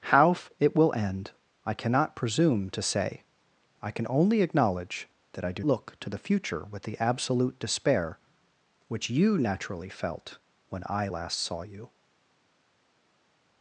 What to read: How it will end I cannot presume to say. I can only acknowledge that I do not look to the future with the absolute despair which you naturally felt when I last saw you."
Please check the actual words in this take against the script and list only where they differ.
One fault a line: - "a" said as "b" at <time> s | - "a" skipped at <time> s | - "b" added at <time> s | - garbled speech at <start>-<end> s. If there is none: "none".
- "not" skipped at 5.6 s